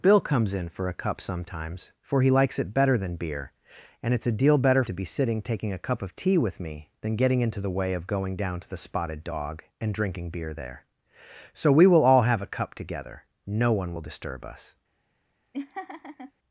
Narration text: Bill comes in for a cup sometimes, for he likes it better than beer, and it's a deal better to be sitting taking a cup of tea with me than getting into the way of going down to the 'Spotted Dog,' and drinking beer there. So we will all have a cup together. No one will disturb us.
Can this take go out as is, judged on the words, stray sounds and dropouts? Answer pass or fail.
fail